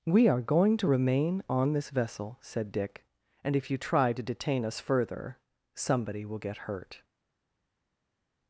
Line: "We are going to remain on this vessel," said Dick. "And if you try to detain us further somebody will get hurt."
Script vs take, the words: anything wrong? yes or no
no